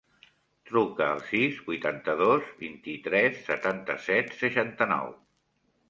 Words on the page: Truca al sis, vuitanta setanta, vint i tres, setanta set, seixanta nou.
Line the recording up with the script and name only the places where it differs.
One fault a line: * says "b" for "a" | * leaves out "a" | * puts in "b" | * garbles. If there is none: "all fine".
* says "dos" for "setanta"